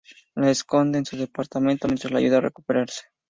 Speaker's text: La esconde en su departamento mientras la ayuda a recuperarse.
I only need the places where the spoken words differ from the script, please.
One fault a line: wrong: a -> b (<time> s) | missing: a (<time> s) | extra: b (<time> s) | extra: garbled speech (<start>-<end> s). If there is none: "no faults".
no faults